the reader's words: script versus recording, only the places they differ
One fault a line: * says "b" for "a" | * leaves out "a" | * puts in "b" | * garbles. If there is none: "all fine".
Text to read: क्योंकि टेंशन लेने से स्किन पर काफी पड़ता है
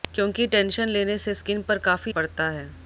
all fine